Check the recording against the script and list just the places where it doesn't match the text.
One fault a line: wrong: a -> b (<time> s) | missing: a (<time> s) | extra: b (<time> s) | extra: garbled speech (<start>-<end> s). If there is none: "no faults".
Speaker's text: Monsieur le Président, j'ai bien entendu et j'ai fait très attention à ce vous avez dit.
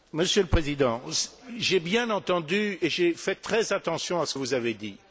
no faults